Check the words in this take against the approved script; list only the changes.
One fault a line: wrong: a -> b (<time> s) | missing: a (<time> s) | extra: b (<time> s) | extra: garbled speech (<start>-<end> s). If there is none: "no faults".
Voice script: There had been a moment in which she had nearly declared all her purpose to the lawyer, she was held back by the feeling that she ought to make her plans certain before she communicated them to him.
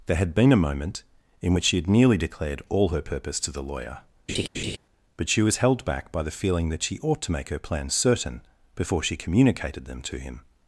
extra: but (5.2 s)